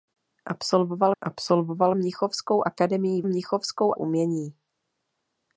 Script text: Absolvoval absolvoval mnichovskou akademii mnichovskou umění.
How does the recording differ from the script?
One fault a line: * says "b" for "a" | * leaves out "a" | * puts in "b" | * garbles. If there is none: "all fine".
all fine